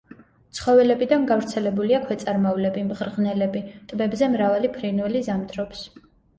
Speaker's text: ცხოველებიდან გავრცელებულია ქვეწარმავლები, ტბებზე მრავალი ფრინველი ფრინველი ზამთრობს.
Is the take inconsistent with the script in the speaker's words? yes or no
yes